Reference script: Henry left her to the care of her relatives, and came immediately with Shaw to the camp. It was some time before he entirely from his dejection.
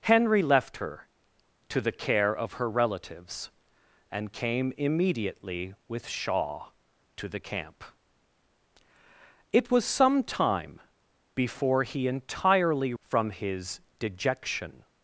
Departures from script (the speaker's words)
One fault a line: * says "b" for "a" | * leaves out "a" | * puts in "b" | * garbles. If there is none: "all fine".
all fine